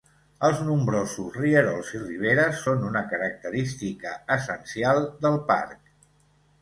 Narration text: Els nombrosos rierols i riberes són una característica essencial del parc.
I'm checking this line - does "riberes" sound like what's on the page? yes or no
yes